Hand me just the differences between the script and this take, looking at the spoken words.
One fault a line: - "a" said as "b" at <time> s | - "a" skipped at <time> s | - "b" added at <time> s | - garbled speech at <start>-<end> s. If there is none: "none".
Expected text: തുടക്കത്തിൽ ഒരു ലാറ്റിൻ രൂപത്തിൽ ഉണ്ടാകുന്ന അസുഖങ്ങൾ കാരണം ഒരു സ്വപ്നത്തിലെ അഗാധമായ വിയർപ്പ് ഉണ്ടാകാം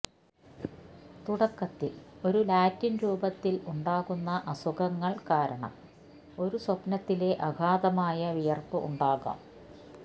none